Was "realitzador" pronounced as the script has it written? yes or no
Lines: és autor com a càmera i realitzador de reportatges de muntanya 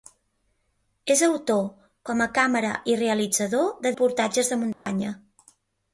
yes